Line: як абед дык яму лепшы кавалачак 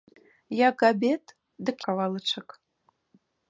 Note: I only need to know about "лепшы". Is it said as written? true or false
false